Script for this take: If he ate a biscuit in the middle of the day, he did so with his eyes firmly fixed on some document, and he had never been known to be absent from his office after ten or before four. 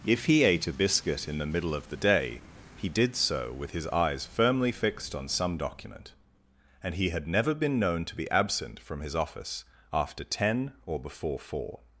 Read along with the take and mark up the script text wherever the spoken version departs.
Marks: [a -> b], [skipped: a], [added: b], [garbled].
If he ate a biscuit in the middle of the day, he did so with his eyes firmly fixed on some document, and he had never been known to be absent from his office after ten or before four.